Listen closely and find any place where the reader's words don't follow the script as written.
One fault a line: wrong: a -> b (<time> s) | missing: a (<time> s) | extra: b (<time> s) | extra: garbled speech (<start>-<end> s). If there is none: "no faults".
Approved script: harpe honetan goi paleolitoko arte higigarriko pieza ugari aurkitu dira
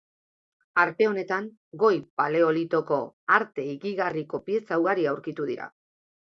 no faults